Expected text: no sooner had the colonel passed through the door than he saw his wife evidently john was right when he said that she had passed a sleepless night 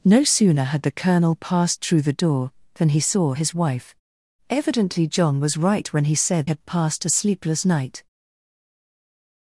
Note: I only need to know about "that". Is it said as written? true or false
false